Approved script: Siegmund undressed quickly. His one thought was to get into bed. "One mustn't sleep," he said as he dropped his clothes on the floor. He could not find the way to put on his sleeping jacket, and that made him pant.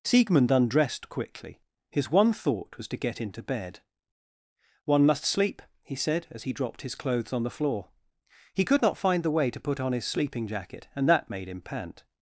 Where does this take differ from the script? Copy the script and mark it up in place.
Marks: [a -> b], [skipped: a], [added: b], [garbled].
Siegmund undressed quickly. His one thought was to get into bed. "One [mustn't -> must] sleep," he said as he dropped his clothes on the floor. He could not find the way to put on his sleeping jacket, and that made him pant.